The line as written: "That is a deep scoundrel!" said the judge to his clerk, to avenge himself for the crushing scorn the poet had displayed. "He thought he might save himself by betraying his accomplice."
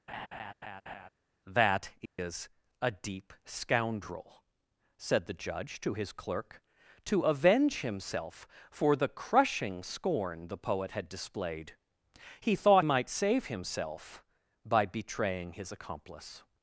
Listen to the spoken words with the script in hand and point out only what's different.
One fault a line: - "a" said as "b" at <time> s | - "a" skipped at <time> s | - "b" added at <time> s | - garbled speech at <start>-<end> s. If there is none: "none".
- "he" skipped at 12.9 s